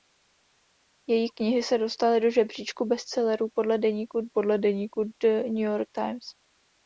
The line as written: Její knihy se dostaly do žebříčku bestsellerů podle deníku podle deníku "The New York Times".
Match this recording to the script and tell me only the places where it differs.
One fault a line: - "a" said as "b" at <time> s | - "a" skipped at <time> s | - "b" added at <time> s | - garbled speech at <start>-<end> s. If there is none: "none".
none